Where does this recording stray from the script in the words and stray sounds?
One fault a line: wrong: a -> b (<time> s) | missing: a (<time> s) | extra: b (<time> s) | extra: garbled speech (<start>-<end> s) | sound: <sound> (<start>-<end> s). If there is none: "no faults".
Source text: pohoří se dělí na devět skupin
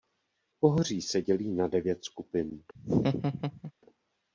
sound: laugh (2.7-3.7 s)